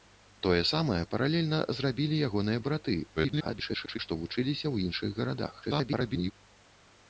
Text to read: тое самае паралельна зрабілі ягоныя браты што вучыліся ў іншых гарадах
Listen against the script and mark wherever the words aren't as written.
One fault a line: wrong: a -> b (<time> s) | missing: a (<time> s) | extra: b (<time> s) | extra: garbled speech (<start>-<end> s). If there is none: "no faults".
extra: garbled speech (3.2-4.0 s)
extra: garbled speech (5.6-6.3 s)